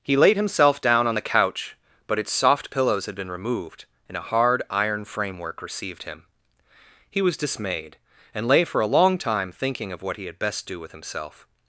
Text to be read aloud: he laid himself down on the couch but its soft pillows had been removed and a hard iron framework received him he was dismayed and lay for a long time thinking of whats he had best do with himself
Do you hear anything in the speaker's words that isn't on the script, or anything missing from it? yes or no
yes